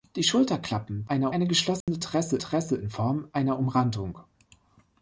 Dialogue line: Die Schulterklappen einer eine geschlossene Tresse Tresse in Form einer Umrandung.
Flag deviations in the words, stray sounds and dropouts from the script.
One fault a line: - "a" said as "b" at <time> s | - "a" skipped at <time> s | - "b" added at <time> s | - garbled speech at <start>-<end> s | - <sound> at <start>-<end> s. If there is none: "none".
- dropout at 1.8-1.9 s